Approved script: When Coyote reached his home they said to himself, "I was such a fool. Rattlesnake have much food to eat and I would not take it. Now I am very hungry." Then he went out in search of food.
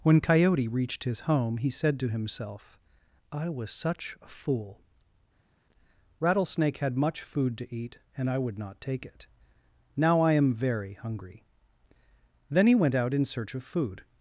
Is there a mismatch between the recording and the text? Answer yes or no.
yes